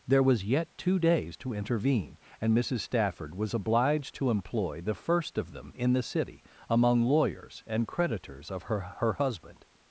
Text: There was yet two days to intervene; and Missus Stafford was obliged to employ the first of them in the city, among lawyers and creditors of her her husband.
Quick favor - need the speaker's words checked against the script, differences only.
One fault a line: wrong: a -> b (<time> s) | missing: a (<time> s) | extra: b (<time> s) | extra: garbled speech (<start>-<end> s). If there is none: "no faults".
no faults